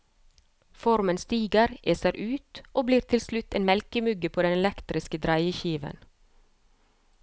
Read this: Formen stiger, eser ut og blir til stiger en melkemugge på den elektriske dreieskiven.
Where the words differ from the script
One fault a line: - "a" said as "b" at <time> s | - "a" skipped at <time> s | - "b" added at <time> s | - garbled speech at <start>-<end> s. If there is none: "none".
- "stiger" said as "slutt" at 3.3 s